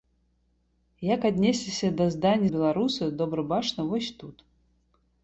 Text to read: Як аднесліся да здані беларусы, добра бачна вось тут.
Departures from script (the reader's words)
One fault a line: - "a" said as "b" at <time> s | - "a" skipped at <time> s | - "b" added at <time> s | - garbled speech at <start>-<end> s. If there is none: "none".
none